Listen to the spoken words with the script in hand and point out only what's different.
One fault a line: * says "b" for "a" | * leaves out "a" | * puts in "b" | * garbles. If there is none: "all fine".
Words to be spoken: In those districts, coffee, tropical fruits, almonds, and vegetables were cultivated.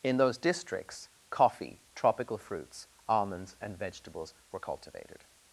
all fine